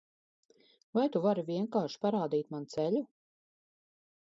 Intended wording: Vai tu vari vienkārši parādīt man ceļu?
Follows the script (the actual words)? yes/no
yes